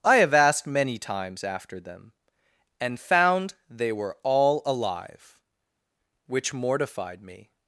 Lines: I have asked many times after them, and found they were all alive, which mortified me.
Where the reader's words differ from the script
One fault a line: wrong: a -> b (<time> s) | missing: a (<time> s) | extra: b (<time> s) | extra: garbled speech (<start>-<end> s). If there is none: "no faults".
no faults